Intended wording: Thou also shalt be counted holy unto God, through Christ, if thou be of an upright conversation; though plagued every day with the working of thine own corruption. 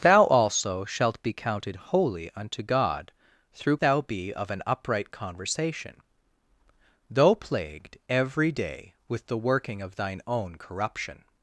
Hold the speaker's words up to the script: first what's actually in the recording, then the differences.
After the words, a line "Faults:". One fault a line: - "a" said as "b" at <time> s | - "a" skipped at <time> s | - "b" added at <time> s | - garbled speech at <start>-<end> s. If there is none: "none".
Thou also shalt be counted holy unto God, through Thou be of an upright conversation; though plagued every day with the working of thine own corruption.
Faults:
- "Christ if" skipped at 3.8 s